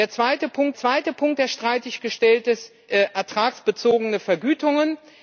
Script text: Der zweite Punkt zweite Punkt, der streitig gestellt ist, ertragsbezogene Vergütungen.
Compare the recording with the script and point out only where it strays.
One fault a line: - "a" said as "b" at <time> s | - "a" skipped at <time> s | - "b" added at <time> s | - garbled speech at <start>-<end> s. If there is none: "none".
none